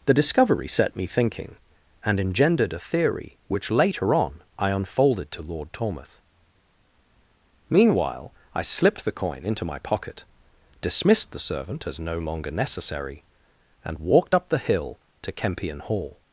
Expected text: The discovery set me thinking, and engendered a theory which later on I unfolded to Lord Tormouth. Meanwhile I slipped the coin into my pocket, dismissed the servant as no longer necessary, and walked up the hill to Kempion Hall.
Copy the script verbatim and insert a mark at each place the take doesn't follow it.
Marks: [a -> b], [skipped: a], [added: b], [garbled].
The discovery set me thinking, and engendered a theory which later on I unfolded to Lord Tormouth. Meanwhile I slipped the coin into my pocket, dismissed the servant as no longer necessary, and walked up the hill to Kempion Hall.